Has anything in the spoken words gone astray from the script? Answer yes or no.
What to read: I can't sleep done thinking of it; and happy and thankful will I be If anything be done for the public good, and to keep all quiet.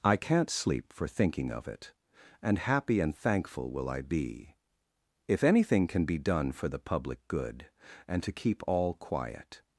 yes